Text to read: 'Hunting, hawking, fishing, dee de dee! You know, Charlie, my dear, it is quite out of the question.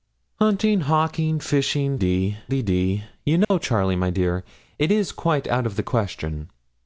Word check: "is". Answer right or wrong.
right